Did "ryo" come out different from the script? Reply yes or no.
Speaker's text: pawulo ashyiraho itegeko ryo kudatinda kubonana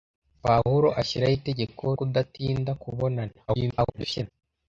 yes